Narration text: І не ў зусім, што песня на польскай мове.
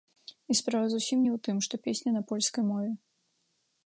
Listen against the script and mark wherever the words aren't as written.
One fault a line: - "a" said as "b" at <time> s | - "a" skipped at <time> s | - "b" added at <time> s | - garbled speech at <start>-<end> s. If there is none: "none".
- "справа зусім" added at 0.6 s
- "зусім" said as "тым" at 1.5 s